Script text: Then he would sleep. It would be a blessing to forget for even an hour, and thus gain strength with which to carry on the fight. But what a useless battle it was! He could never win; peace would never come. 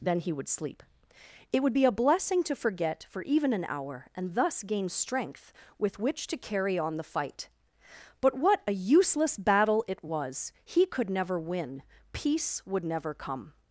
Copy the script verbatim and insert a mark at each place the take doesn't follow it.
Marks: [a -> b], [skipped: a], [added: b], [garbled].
Then he would sleep. It would be a blessing to forget for even an hour, and thus gain strength with which to carry on the fight. But what a useless battle it was! He could never win; peace would never come.